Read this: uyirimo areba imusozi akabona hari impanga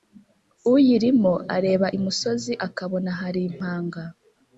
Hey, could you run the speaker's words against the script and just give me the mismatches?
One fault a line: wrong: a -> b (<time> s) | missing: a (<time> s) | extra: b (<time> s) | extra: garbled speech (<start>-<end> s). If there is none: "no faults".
no faults